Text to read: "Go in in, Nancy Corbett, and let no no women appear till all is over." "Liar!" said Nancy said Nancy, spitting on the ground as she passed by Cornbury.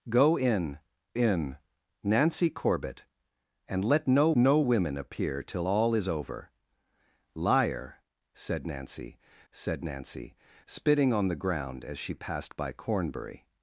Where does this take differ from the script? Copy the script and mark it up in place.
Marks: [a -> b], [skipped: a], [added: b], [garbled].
"Go in in, Nancy Corbett, and let no no women appear till all is over." "Liar!" said Nancy said Nancy, spitting on the ground as she passed by Cornbury.